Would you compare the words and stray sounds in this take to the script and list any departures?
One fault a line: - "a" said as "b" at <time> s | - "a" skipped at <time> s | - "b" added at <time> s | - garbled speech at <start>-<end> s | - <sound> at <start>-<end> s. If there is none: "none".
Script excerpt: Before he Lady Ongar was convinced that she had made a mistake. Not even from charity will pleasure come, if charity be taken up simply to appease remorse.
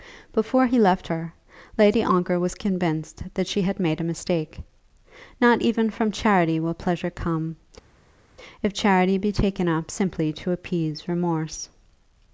- "left her" added at 0.8 s